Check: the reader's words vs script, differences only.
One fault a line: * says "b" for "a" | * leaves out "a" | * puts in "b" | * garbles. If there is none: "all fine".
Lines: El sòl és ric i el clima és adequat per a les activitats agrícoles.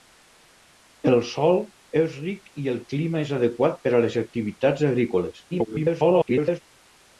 * garbles